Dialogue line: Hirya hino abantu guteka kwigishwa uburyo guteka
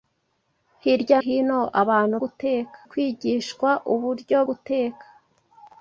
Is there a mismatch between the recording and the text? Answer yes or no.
no